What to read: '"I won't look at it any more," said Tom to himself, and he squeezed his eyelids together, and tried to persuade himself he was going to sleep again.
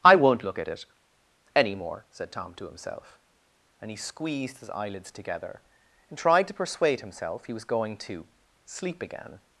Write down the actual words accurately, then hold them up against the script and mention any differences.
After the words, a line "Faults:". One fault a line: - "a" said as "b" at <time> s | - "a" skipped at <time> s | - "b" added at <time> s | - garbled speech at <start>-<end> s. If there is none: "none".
'"I won't look at it any more," said Tom to himself, and he squeezed his eyelids together, and tried to persuade himself he was going to sleep again.
Faults:
none